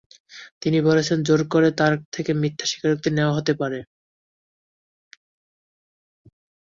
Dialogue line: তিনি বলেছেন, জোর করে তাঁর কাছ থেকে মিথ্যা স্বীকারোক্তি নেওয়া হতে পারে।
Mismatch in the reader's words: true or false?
true